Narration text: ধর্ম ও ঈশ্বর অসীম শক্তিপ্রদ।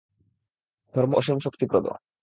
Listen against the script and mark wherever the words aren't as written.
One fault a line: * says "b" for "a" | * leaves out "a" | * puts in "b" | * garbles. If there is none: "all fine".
* leaves out "ও ঈশ্বর"